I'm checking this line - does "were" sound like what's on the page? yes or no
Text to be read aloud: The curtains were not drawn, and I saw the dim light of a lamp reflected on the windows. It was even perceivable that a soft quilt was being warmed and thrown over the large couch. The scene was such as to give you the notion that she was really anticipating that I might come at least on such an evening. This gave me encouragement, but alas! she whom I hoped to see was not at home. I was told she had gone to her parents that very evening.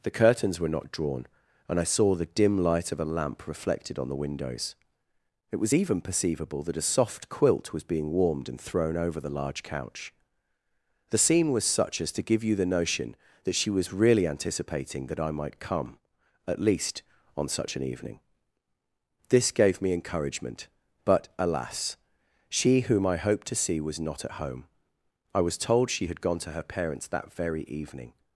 yes